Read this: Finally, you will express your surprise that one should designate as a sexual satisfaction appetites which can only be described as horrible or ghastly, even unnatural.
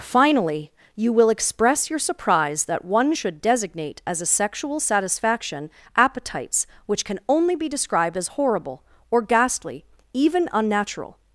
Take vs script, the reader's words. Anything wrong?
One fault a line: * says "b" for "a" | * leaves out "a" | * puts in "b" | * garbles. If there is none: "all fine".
all fine